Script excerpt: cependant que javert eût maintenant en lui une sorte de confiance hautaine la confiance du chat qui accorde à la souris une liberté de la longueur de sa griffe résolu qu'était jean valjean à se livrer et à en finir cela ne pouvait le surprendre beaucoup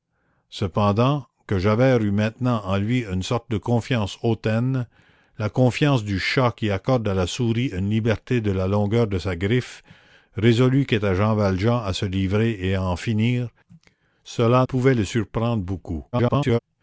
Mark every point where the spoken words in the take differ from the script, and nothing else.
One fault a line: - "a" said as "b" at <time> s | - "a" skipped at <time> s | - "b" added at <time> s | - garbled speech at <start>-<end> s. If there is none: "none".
- "ne" skipped at 14.7 s
- garbled speech at 16.1-16.6 s